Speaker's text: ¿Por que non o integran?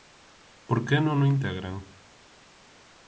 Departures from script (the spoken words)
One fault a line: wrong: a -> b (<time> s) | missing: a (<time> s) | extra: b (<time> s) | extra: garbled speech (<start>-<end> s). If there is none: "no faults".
no faults